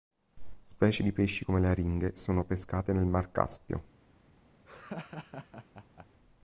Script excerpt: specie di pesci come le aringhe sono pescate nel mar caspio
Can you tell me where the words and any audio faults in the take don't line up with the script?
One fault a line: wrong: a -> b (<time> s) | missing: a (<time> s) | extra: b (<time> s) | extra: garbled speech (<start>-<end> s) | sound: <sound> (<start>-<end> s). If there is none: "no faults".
sound: laugh (4.7-6.1 s)